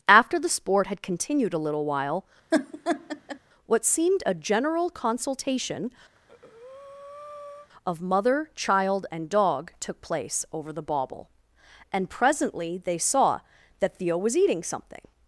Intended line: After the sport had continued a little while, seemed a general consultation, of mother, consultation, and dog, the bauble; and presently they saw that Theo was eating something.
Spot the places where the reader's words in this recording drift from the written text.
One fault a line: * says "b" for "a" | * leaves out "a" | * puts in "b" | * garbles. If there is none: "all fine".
* puts in "what"
* says "child" for "consultation"
* puts in "took place over"